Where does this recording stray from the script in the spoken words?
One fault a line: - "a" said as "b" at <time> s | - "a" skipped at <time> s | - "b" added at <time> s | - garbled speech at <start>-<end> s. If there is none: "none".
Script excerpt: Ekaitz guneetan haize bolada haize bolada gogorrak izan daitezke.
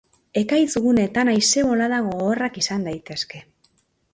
- "haize bolada" skipped at 2.0 s